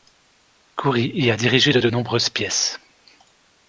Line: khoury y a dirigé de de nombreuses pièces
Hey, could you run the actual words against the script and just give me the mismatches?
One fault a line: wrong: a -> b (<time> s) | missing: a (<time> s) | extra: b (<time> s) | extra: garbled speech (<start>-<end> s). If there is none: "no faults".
no faults